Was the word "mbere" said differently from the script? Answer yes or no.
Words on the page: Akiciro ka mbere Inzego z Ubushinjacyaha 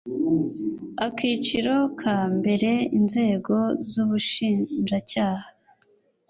no